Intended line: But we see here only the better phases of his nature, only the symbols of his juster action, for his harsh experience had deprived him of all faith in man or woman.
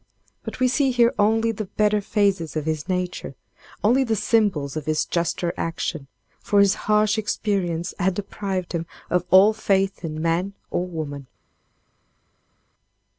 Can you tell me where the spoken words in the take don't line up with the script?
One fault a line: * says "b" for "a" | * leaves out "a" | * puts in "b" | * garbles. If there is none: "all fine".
all fine